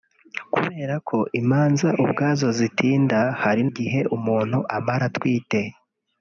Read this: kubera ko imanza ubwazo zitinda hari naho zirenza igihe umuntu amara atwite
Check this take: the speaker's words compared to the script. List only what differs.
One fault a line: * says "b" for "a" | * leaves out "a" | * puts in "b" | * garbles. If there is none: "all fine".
* leaves out "naho zirenza"